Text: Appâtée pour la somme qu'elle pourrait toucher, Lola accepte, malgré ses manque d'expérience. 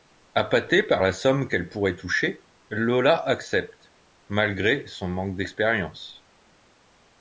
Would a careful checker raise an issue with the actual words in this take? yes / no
yes